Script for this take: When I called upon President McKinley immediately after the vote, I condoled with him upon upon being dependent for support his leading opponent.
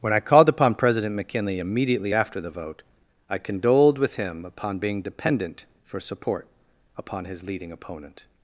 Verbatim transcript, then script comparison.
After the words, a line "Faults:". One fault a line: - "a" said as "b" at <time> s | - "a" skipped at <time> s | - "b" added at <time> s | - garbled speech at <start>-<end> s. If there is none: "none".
When I called upon President McKinley immediately after the vote, I condoled with him upon being dependent for support upon his leading opponent.
Faults:
- "upon" skipped at 4.8 s
- "upon" added at 7.0 s